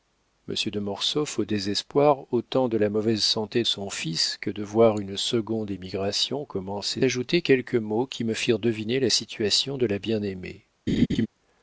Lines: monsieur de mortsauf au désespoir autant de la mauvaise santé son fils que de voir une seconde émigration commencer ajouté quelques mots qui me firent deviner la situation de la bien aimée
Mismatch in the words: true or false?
false